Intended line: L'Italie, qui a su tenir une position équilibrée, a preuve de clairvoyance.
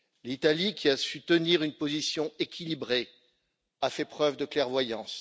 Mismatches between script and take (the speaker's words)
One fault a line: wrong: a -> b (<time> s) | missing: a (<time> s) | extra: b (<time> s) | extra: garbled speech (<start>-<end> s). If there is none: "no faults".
extra: fait (3.9 s)